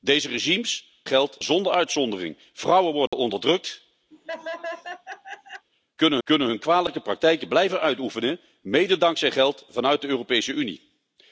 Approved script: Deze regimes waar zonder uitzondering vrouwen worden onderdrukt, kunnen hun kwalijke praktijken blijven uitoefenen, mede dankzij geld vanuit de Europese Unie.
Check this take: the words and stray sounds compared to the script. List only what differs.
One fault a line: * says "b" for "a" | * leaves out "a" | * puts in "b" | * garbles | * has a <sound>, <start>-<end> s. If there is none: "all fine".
* says "geld" for "waar"
* has a dropout, 3.1-3.1 s
* has a laugh, 4.1-5.7 s
* puts in "kunnen"